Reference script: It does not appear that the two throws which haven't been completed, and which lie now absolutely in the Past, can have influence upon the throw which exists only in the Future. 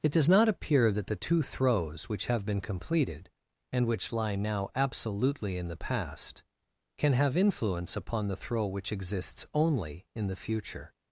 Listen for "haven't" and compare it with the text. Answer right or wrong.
wrong